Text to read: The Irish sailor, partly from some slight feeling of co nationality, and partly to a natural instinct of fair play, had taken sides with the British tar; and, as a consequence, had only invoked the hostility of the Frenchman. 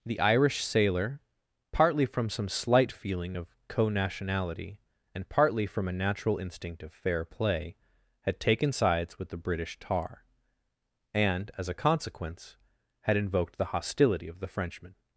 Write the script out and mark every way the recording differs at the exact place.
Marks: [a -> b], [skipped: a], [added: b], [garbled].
The Irish sailor, partly from some slight feeling of co nationality, and partly [to -> from] a natural instinct of fair play, had taken sides with the British tar; and, as a consequence, had [skipped: only] invoked the hostility of the Frenchman.